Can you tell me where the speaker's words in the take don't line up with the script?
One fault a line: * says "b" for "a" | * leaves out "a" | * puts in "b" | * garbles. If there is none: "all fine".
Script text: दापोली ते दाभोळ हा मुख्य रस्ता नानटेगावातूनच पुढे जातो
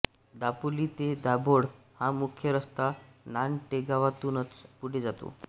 all fine